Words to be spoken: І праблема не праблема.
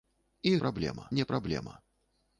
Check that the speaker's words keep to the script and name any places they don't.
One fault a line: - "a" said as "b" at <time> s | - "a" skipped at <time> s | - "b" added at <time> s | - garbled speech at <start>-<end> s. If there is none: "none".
none